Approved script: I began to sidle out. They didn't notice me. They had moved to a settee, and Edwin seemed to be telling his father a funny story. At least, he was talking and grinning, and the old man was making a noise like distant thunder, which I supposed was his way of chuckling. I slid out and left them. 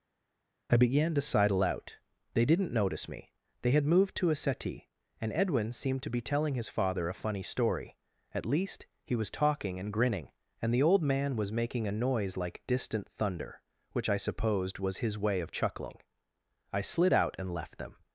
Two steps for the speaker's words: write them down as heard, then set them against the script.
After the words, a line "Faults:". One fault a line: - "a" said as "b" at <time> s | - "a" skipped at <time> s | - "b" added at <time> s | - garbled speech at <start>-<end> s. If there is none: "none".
I began to sidle out. They didn't notice me. They had moved to a settee, and Edwin seemed to be telling his father a funny story. At least, he was talking and grinning, and the old man was making a noise like distant thunder, which I supposed was his way of chuckling. I slid out and left them.
Faults:
none